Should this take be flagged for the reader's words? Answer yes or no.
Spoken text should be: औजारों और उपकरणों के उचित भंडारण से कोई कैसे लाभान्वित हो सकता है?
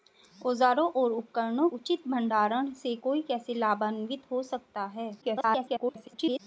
yes